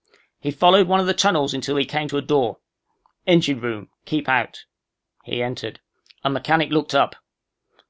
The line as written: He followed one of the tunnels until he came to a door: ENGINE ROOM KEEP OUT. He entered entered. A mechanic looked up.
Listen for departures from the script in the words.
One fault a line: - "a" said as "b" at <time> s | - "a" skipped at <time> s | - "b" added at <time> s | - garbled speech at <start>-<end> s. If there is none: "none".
- "entered" skipped at 5.8 s